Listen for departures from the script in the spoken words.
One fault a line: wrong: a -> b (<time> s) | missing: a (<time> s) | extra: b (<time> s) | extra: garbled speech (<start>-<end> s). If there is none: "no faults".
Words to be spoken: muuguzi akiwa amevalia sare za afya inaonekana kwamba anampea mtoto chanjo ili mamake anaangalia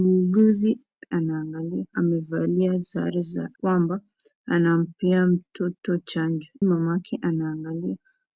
wrong: akiwa -> anaangalia (1.1 s)
missing: afya inaonekana (3.5 s)
missing: ili (6.5 s)